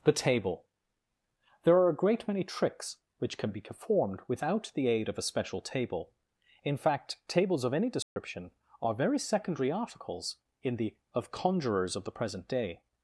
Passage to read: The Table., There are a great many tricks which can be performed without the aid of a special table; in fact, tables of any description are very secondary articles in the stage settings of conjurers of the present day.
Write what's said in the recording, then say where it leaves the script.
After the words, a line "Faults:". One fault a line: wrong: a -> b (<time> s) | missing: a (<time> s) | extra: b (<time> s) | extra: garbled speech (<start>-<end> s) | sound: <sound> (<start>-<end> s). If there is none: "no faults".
The Table., There are a great many tricks which can be performed without the aid of a special table; in fact, tables of any description are very secondary articles in the of conjurers of the present day.
Faults:
sound: dropout (8.0-8.2 s)
missing: stage settings (11.0 s)